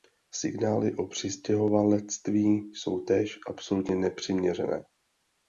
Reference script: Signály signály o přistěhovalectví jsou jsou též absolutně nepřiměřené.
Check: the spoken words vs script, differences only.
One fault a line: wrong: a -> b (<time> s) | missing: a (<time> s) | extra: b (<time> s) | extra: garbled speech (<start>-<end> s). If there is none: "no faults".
missing: signály (0.9 s)
missing: jsou (3.0 s)